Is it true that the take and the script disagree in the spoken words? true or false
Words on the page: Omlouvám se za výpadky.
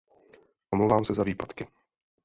false